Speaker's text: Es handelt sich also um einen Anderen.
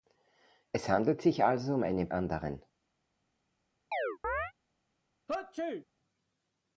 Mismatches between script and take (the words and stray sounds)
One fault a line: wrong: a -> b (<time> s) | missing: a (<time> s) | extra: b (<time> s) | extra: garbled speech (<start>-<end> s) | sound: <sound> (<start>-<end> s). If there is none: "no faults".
sound: chirp (3.9-4.5 s)
sound: sneeze (5.3-5.8 s)